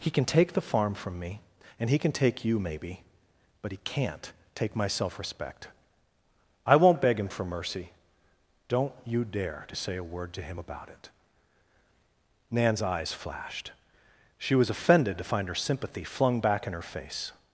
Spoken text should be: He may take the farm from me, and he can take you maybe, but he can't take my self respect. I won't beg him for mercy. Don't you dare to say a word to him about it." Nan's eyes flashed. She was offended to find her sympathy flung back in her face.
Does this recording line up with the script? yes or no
no